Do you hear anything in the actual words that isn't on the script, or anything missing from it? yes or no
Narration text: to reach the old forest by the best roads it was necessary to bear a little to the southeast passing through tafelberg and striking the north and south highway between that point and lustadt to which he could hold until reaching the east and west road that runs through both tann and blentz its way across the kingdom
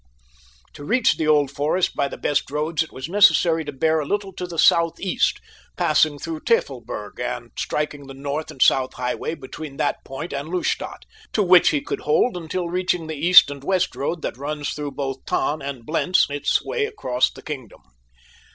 no